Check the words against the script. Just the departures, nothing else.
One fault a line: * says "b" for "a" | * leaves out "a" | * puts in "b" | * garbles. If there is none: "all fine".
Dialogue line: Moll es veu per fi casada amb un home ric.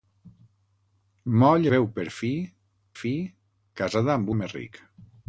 * leaves out "es"
* puts in "fi"
* leaves out "un"